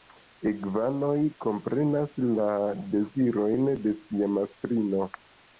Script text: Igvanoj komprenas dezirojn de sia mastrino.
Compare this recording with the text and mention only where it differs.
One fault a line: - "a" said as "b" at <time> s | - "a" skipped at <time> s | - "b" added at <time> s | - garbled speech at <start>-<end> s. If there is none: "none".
- "la" added at 2.4 s